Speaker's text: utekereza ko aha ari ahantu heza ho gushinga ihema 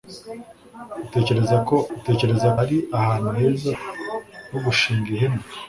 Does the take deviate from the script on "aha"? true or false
true